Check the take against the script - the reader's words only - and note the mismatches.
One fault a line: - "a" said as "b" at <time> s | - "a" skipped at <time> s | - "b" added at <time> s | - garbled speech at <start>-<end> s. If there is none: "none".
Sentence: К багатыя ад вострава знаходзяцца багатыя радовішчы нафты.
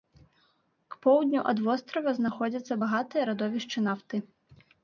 - "багатыя" said as "поўдню" at 1.0 s